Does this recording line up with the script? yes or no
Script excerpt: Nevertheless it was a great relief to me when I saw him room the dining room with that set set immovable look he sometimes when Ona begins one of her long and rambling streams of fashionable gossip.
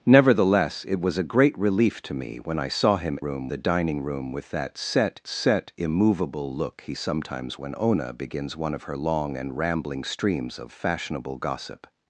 yes